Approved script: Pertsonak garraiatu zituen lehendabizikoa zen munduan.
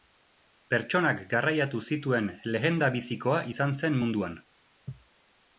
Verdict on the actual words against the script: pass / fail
fail